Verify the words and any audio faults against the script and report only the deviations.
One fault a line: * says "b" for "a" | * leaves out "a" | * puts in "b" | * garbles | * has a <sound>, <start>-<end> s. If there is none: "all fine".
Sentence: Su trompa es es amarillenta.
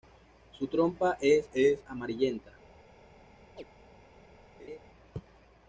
* has a chirp, 3.6-3.6 s
* has a laugh, 4.6-4.8 s